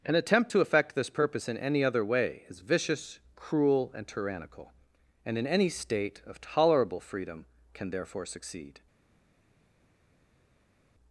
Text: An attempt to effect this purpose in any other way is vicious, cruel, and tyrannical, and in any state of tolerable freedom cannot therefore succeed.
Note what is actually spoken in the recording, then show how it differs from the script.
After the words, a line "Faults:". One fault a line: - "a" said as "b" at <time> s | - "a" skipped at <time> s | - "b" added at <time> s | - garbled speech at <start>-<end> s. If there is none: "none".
An attempt to effect this purpose in any other way is vicious, cruel, and tyrannical, and in any state of tolerable freedom can therefore succeed.
Faults:
- "cannot" said as "can" at 7.7 s